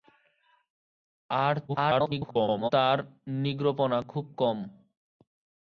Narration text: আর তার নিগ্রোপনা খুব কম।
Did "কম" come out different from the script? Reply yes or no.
no